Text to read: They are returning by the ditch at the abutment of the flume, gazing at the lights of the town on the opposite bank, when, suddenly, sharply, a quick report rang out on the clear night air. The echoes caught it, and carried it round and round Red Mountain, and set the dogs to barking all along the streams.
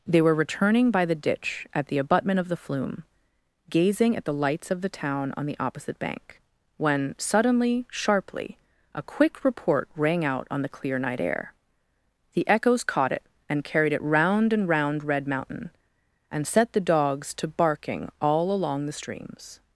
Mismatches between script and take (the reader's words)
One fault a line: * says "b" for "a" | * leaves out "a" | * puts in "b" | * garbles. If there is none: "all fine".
* says "were" for "are"